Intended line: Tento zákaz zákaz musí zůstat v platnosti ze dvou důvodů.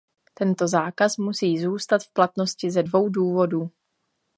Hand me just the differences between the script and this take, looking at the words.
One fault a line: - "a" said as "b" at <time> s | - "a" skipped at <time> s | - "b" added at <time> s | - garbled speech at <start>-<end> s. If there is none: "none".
- "zákaz" skipped at 1.2 s